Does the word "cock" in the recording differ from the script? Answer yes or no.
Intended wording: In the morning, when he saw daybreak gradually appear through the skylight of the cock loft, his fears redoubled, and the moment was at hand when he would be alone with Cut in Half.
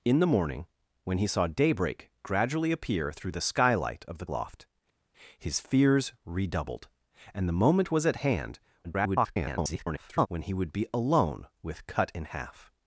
yes